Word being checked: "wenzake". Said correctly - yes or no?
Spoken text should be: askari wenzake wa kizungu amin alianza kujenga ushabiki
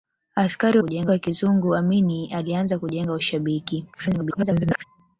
no